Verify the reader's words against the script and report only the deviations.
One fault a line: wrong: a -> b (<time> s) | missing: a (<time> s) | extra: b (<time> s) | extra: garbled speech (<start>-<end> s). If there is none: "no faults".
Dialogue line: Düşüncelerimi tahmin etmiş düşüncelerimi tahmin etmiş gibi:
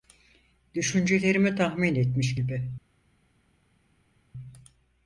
missing: düşüncelerimi tahmin etmiş (2.4 s)